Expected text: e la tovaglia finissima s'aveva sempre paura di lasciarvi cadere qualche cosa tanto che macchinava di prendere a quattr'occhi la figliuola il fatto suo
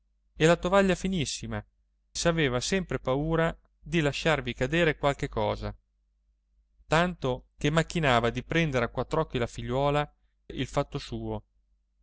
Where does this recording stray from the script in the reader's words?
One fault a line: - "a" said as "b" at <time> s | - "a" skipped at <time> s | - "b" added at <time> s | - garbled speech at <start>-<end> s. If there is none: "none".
none